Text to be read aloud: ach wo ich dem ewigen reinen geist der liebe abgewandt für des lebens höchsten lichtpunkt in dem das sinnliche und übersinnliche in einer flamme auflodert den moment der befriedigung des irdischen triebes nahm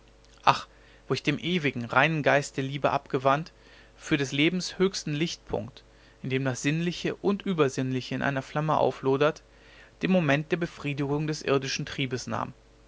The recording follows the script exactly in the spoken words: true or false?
true